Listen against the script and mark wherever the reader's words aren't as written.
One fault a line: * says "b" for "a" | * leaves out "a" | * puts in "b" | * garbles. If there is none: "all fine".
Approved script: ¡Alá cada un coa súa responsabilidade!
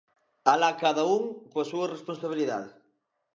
all fine